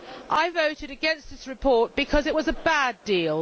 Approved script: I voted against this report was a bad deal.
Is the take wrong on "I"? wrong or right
right